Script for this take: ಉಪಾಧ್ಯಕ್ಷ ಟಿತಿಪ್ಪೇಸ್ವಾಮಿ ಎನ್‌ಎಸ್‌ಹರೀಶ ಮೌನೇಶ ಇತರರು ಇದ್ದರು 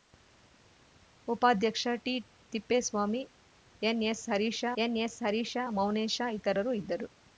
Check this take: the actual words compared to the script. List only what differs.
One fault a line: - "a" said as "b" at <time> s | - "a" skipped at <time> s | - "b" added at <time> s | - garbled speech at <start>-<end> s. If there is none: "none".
- "ಎನ್‌ಎಸ್‌ಹರೀಶ" added at 4.8 s